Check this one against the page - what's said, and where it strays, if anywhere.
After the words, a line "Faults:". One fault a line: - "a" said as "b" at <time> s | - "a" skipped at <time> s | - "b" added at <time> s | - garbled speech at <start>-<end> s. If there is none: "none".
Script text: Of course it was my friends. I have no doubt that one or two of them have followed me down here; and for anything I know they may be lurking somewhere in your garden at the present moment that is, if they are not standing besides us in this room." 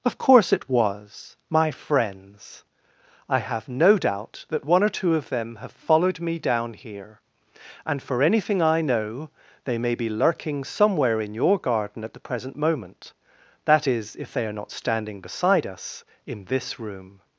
Of course it was my friends. I have no doubt that one or two of them have followed me down here; and for anything I know they may be lurking somewhere in your garden at the present moment that is, if they are not standing beside us in this room."
Faults:
- "besides" said as "beside" at 15.2 s